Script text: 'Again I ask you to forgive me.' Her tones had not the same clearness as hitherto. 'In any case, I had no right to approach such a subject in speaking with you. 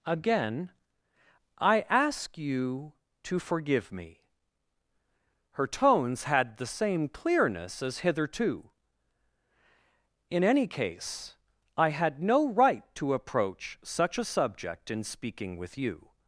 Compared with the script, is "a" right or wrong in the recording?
right